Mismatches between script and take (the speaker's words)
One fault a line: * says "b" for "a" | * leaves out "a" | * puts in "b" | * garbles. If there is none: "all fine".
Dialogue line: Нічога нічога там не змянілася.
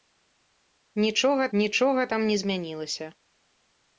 all fine